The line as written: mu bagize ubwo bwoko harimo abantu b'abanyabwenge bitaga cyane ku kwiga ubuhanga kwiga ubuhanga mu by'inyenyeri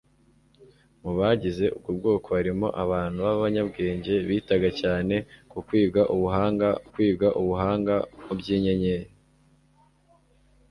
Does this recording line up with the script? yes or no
yes